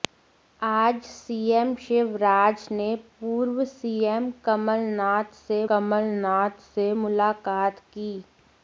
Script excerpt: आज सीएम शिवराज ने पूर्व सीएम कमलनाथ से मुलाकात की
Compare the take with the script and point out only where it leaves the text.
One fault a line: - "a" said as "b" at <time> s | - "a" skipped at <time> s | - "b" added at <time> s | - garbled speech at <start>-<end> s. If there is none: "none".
- "कमलनाथ से" added at 5.7 s